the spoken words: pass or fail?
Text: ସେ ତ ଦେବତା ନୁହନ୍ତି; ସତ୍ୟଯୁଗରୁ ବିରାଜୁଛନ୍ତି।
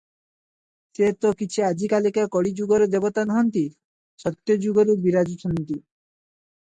fail